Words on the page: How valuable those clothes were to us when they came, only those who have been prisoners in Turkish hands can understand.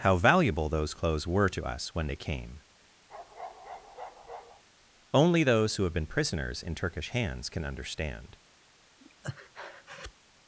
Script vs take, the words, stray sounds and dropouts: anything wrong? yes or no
yes